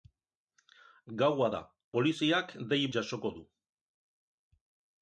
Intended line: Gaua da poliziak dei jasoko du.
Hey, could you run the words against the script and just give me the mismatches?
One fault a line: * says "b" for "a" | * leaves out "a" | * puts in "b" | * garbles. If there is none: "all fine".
all fine